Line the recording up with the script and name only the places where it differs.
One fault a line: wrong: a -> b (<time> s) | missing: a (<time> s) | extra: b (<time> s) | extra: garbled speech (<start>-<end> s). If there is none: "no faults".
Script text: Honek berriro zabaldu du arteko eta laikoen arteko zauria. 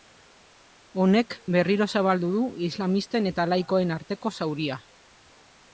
wrong: arteko -> islamisten (2.7 s)